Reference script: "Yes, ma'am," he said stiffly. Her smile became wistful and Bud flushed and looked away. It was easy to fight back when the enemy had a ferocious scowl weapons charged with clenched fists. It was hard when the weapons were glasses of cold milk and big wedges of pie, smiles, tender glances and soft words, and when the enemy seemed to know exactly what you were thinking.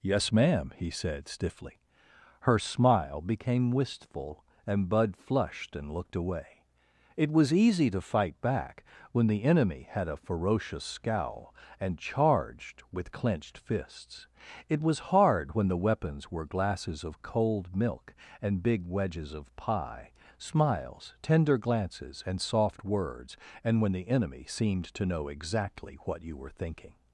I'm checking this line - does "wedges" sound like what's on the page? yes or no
yes